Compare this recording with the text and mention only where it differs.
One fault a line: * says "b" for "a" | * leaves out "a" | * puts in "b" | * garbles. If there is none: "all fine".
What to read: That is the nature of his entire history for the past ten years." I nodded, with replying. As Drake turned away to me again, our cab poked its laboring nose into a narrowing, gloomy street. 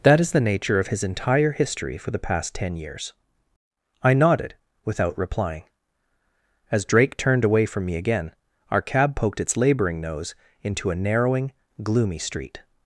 * says "without" for "with"
* says "from" for "to"